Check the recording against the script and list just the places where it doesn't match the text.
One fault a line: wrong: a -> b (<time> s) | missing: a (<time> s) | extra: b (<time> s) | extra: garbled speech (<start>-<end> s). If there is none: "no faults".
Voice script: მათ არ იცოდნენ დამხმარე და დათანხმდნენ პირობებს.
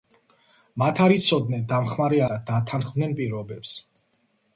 no faults